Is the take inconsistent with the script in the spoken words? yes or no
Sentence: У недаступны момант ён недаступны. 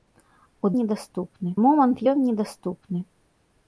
no